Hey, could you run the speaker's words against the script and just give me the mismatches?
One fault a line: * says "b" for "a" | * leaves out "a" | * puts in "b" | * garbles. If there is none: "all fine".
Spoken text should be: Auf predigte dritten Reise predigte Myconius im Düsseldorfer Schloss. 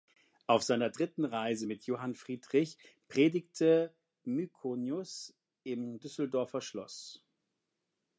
* says "seiner" for "predigte"
* puts in "mit Johann Friedrich"